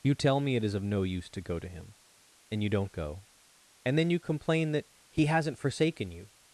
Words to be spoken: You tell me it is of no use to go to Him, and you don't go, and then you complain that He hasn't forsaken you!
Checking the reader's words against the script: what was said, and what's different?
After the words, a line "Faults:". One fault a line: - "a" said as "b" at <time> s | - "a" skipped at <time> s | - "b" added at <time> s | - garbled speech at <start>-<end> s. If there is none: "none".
You tell me it is of no use to go to Him, and you don't go, and then you complain that He hasn't forsaken you!
Faults:
none